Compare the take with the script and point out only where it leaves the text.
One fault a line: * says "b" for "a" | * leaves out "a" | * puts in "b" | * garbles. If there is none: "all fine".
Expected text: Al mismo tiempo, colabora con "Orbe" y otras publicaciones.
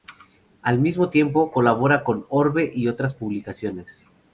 all fine